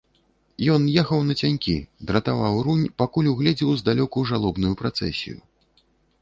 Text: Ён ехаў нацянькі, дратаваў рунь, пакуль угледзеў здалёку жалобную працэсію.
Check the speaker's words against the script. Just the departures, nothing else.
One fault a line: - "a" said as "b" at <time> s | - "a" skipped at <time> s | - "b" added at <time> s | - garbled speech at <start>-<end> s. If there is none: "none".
none